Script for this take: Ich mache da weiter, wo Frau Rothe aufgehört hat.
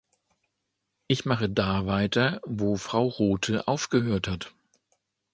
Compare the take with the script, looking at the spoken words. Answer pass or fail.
pass